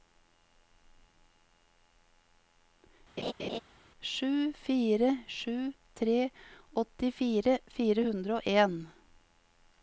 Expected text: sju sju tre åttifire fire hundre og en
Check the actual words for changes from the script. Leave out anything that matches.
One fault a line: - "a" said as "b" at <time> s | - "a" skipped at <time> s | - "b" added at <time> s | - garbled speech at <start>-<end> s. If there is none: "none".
- "fire" added at 4.5 s